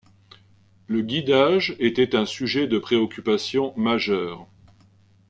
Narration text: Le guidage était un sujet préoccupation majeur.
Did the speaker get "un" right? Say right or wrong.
right